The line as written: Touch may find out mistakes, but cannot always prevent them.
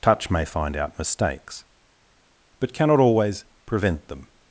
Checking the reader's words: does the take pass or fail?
pass